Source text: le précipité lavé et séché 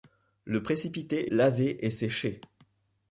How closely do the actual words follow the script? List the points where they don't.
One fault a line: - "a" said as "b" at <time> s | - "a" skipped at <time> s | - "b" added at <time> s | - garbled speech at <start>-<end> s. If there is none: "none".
none